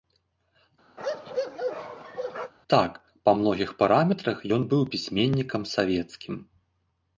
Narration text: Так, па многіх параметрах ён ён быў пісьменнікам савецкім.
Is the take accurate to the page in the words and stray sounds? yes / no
no